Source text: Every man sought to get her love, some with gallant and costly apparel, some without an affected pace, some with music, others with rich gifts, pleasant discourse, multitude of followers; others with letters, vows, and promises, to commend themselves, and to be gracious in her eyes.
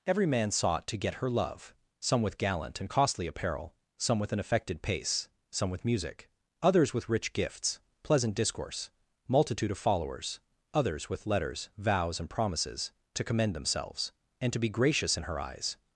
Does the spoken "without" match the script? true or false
false